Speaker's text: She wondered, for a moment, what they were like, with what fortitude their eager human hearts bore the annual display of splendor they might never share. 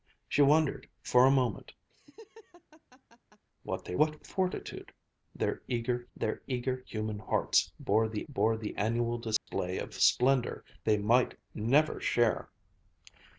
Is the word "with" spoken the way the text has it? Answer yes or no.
no